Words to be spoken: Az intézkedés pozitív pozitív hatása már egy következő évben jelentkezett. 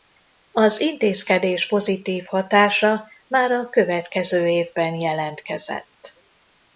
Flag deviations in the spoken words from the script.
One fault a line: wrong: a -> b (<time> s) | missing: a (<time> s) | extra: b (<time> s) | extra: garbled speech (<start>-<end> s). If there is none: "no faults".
missing: pozitív (2.2 s)
wrong: egy -> a (3.5 s)